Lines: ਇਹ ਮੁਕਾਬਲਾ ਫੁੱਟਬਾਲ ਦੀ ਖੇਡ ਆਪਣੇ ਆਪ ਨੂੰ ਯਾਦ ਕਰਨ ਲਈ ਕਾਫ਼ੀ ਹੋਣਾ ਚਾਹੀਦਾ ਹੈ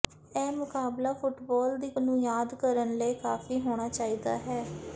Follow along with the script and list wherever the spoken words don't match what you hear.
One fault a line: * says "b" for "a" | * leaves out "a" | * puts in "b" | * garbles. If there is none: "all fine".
* leaves out "ਖੇਡ ਆਪਣੇ ਆਪ"